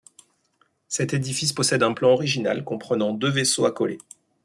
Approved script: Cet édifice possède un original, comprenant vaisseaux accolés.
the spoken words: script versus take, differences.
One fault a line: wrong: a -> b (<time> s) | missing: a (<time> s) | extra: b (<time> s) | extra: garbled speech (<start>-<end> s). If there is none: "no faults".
extra: plan (1.9 s)
extra: deux (3.1 s)